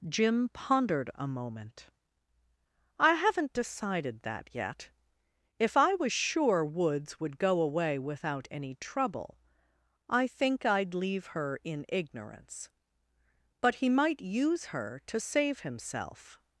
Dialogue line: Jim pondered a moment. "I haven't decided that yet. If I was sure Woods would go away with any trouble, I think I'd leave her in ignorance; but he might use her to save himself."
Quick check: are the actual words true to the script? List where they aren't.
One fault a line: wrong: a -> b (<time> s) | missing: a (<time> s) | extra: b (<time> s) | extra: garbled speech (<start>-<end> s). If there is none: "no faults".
wrong: with -> without (8.0 s)